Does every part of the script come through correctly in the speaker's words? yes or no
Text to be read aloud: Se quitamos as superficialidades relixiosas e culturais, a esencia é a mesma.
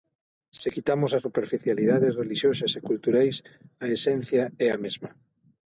yes